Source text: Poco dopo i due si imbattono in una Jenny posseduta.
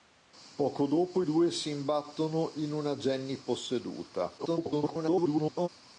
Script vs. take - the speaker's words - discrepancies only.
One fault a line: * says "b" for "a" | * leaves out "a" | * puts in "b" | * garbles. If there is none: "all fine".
* garbles